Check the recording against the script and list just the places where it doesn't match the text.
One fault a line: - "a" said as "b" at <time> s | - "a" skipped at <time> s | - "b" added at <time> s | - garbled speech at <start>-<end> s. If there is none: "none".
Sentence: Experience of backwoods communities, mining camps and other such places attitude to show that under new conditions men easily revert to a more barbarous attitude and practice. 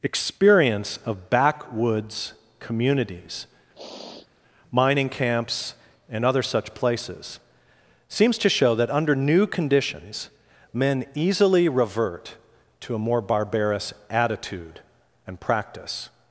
- "attitude" said as "seems" at 8.1 s